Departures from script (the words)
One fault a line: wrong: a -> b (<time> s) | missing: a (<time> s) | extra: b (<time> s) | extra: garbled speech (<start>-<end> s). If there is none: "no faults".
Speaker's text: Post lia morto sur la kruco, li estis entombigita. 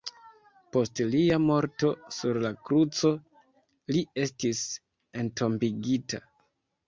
no faults